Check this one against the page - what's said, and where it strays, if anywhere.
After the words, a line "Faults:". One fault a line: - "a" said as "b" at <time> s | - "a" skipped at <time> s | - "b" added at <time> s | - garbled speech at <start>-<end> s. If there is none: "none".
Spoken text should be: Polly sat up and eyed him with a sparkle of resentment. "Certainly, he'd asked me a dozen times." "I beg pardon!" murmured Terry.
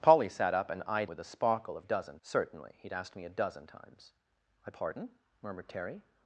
Polly sat up and eyed with a sparkle of dozen. "Certainly, he'd asked me a dozen times." "I pardon!" murmured Terry.
Faults:
- "him" skipped at 1.1 s
- "resentment" said as "dozen" at 1.8 s
- "beg" skipped at 4.7 s